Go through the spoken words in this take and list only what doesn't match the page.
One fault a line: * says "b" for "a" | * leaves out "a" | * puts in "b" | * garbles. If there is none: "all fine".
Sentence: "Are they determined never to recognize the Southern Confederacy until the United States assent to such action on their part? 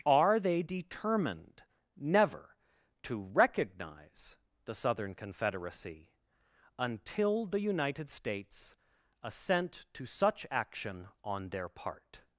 all fine